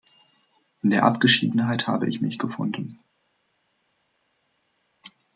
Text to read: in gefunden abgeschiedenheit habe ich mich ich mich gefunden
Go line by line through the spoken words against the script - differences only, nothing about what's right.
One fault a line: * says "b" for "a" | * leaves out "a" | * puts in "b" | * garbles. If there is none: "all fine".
* says "der" for "gefunden"
* leaves out "ich mich"